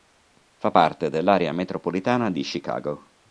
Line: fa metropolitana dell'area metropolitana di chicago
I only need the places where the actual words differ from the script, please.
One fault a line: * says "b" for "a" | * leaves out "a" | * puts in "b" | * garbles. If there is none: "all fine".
* says "parte" for "metropolitana"